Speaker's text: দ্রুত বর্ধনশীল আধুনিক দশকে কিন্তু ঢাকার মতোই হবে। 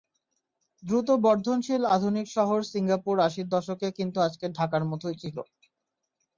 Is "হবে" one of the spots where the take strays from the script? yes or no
yes